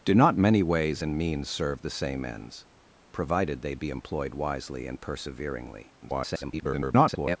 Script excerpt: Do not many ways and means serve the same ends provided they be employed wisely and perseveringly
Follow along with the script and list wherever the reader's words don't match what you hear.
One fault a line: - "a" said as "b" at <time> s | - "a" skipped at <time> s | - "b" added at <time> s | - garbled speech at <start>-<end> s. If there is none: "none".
- garbled speech at 6.0-7.4 s